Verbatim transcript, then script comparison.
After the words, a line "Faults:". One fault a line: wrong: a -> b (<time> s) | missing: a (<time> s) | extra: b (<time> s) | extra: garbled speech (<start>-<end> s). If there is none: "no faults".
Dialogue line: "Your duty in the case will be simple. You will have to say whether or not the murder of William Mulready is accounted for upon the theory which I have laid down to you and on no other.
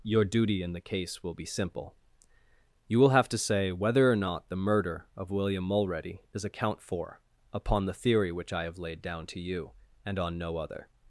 "Your duty in the case will be simple. You will have to say whether or not the murder of William Mulready is account for upon the theory which I have laid down to you and on no other.
Faults:
wrong: accounted -> account (6.4 s)